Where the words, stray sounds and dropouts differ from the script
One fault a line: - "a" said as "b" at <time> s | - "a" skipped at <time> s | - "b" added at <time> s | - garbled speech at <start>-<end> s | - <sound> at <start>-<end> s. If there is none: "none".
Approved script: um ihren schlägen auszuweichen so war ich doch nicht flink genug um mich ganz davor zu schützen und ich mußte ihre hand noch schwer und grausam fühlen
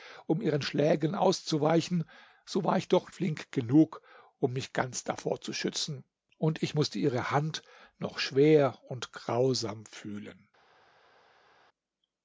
- "nicht" skipped at 3.1 s